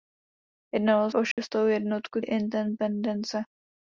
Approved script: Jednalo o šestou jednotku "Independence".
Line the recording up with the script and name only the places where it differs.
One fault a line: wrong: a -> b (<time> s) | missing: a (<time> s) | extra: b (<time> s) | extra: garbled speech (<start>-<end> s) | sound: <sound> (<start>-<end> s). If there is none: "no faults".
sound: dropout (1.3-1.4 s)